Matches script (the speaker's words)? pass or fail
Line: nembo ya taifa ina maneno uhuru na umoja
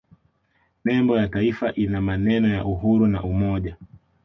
fail